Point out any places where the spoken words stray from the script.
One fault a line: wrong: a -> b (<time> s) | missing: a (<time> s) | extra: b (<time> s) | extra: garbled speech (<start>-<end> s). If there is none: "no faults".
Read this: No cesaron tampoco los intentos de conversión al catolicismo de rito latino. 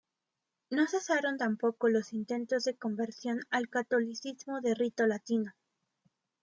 no faults